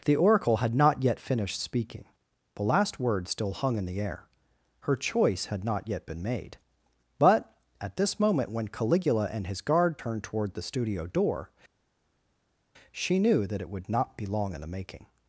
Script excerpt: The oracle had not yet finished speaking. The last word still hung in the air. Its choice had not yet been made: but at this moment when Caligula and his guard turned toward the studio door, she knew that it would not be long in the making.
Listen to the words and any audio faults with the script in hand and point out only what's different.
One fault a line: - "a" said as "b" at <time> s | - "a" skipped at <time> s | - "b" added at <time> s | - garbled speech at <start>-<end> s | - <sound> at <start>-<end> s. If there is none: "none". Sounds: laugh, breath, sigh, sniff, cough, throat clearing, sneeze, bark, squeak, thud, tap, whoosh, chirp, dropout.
- "Its" said as "Her" at 4.8 s